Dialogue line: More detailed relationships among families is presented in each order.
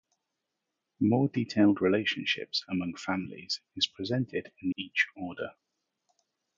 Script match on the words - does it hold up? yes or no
yes